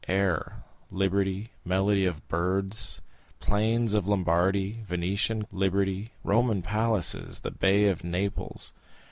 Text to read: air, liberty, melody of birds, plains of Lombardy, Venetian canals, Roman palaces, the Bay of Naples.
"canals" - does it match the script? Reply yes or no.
no